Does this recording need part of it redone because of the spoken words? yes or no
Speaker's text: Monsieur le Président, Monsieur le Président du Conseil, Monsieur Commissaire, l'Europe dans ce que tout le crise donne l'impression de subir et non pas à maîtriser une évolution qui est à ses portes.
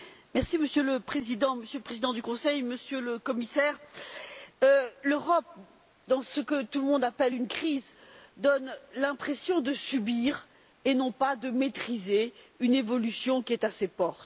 yes